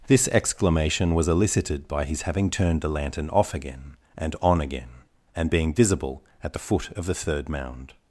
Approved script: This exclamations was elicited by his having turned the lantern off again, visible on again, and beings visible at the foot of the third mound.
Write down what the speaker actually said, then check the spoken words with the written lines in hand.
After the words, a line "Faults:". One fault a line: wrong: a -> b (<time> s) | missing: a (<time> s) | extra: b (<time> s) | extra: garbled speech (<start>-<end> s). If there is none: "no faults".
This exclamation was elicited by his having turned the lantern off again, and on again, and being visible at the foot of the third mound.
Faults:
wrong: exclamations -> exclamation (0.3 s)
wrong: visible -> and (4.2 s)
wrong: beings -> being (5.5 s)